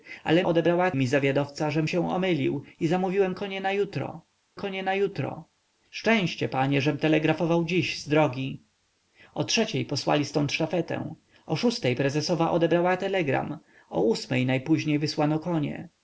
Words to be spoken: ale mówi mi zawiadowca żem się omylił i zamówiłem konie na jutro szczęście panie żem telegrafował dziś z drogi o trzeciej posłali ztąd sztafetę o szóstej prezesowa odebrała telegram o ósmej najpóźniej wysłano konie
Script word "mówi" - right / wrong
wrong